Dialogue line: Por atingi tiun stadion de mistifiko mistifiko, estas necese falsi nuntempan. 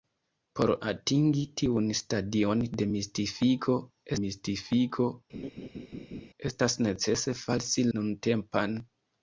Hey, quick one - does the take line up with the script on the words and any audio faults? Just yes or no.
no